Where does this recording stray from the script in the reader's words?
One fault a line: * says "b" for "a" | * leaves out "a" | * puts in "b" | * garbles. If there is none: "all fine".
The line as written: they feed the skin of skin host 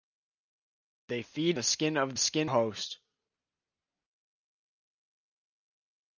all fine